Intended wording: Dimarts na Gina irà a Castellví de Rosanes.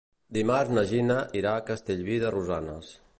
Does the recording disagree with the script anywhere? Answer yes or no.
no